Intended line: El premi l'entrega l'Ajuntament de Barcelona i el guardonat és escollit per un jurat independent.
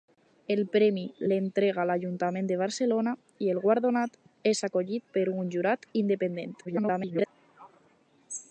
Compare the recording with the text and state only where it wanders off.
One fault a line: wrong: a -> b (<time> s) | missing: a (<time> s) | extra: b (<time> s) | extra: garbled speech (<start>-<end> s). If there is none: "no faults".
extra: garbled speech (6.6-7.3 s)